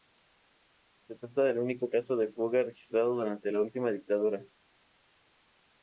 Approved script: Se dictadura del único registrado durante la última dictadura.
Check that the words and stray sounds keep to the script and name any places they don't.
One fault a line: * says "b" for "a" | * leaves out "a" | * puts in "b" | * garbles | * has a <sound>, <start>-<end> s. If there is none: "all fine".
* says "trata" for "dictadura"
* puts in "caso de fuga"